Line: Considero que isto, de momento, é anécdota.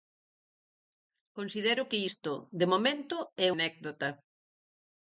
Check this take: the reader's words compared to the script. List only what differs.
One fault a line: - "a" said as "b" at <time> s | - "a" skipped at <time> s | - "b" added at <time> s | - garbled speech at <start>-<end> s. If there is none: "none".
none